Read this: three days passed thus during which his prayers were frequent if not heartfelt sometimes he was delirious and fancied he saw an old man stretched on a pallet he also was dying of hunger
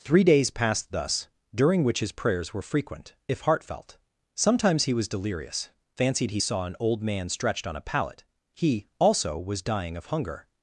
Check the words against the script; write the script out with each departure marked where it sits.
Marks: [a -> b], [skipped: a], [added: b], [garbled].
three days passed thus during which his prayers were frequent if [skipped: not] heartfelt sometimes he was delirious [skipped: and] fancied he saw an old man stretched on a pallet he also was dying of hunger